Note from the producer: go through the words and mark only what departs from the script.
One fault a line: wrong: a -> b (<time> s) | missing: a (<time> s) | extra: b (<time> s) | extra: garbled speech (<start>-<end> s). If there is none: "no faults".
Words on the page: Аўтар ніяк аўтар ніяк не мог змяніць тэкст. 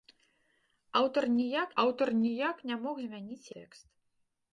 no faults